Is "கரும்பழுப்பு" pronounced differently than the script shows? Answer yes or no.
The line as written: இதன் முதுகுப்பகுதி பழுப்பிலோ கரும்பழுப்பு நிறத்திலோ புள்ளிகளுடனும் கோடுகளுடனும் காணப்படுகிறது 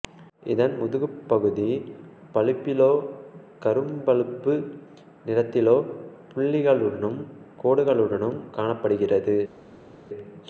no